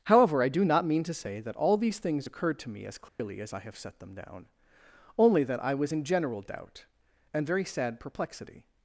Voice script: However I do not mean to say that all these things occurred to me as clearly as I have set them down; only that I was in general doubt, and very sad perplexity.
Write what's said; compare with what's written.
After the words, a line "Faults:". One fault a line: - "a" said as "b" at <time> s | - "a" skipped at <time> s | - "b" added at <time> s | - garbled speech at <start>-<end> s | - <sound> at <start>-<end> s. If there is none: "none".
However I do not mean to say that all these things occurred to me as clearly as I have set them down; only that I was in general doubt, and very sad perplexity.
Faults:
- dropout at 3.1-3.2 s